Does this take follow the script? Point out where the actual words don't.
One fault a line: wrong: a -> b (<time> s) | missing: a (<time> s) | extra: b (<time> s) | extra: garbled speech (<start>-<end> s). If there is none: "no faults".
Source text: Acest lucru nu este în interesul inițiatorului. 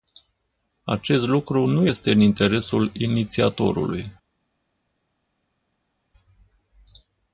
no faults